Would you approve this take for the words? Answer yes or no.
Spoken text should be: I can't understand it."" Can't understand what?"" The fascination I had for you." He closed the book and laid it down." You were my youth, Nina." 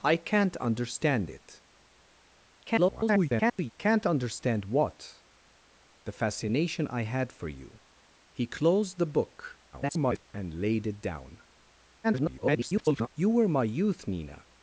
no